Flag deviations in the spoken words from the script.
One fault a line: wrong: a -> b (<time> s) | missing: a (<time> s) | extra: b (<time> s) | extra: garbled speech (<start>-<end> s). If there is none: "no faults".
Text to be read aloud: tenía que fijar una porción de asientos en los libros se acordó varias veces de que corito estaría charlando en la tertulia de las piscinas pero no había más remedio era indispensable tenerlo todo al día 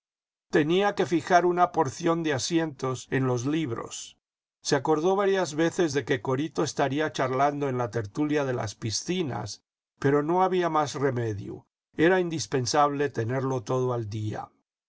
no faults